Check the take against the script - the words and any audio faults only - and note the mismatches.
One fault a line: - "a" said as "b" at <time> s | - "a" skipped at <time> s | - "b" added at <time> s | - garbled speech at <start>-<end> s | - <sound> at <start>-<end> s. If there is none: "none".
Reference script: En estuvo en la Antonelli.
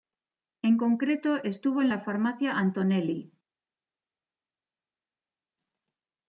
- "concreto" added at 0.8 s
- "farmacia" added at 2.0 s